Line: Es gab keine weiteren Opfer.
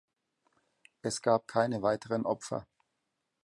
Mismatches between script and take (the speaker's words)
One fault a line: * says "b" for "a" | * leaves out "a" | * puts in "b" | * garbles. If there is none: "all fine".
all fine